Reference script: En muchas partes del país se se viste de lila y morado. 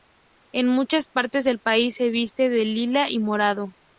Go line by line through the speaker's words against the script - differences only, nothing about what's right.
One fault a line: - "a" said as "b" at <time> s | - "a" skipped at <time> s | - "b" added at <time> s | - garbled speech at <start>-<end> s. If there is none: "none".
- "se" skipped at 2.1 s